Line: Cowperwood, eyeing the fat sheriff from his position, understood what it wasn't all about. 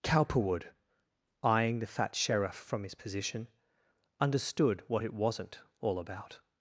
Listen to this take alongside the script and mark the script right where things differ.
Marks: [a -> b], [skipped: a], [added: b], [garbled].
Cowperwood, eyeing the fat sheriff from his position, understood what it wasn't all about.